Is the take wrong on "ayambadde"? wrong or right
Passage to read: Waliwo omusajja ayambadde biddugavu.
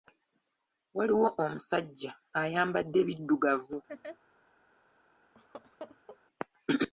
right